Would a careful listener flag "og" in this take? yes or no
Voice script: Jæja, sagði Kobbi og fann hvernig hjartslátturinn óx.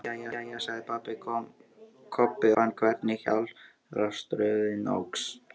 yes